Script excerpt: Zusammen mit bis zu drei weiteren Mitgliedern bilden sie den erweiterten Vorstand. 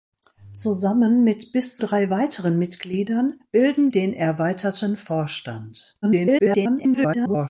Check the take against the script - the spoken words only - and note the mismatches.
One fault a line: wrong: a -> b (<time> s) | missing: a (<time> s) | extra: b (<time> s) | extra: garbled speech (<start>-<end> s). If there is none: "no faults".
missing: zu (1.8 s)
missing: sie (3.9 s)
extra: garbled speech (6.0-7.5 s)